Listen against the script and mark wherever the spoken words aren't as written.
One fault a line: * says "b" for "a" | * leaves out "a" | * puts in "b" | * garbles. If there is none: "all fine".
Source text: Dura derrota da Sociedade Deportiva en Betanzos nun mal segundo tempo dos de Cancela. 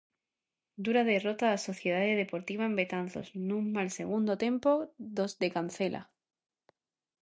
all fine